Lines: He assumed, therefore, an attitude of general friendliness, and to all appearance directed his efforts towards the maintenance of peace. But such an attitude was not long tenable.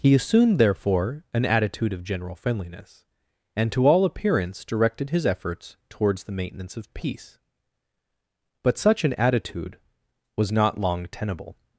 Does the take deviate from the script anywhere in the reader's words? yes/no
no